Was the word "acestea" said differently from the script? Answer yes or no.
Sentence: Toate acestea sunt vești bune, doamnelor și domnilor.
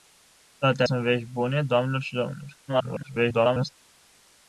yes